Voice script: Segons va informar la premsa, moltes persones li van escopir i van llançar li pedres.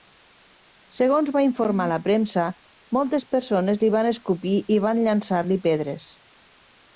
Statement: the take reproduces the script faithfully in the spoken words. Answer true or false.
true